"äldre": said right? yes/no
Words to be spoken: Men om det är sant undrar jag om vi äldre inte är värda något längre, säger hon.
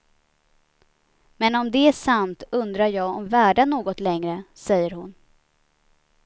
no